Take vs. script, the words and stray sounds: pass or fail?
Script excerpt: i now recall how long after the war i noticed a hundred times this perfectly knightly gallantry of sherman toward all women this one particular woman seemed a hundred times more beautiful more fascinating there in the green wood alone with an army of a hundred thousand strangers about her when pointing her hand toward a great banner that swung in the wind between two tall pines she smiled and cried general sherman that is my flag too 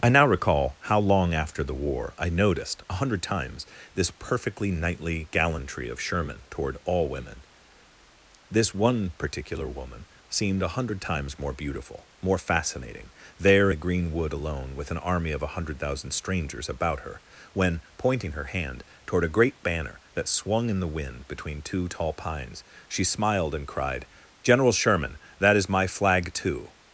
fail